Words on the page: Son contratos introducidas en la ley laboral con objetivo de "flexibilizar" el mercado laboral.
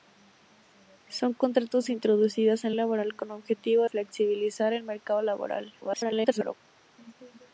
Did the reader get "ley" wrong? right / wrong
wrong